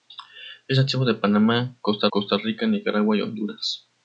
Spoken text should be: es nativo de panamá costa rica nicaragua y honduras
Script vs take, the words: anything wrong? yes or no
yes